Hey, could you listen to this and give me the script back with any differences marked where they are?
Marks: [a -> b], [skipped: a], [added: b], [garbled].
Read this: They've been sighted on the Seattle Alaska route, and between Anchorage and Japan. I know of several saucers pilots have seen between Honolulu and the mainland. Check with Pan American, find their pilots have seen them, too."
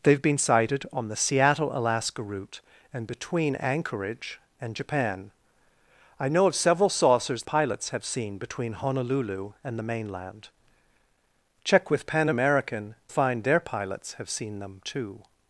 They've been sighted on the Seattle Alaska route, and between Anchorage and Japan. I know of several saucers pilots have seen between Honolulu and the mainland. Check with Pan American, find their pilots have seen them, too."